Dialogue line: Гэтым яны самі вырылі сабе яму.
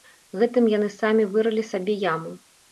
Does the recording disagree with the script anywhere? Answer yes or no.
no